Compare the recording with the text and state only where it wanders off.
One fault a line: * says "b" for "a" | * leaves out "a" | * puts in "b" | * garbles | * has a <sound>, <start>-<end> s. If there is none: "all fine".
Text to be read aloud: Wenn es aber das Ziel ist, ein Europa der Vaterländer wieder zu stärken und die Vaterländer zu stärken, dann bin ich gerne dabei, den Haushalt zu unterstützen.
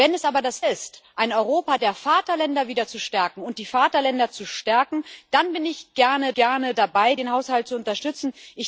* leaves out "Ziel"
* puts in "gerne"